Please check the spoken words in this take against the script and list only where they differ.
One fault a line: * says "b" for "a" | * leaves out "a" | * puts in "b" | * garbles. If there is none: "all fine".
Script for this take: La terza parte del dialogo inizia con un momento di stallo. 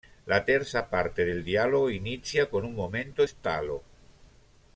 * leaves out "di"